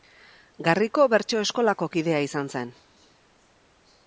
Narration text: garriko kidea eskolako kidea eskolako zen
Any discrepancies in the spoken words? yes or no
yes